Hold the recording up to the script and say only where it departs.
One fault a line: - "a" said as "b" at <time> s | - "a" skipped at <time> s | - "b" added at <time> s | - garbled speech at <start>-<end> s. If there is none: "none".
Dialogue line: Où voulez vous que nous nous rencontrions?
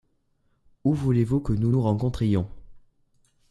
none